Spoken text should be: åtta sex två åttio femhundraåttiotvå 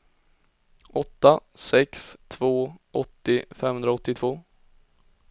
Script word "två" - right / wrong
right